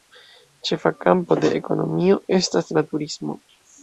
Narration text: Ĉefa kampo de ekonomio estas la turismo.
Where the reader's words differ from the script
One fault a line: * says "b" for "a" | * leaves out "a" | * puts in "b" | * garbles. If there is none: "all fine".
all fine